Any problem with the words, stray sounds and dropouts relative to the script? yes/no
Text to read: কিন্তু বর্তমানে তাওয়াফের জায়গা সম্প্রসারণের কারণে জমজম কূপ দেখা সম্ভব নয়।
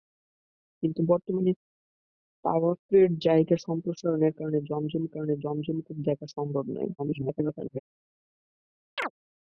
yes